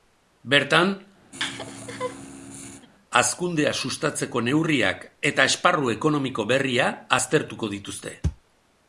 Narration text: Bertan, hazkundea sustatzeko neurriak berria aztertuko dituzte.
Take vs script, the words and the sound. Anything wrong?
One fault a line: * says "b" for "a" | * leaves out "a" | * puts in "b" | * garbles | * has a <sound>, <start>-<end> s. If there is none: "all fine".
* has a laugh, 1.3-2.9 s
* puts in "eta esparru ekonomiko"